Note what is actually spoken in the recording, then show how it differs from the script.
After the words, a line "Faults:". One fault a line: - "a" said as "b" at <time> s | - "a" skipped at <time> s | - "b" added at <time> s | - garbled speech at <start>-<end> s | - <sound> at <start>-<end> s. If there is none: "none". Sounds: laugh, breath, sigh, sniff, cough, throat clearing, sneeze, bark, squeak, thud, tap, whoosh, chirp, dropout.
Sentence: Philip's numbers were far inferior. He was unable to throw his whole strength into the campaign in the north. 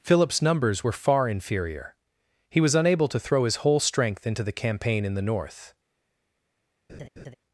Philip's numbers were far inferior. He was unable to throw his whole strength into the campaign in the north.
Faults:
- laugh at 6.9-7.3 s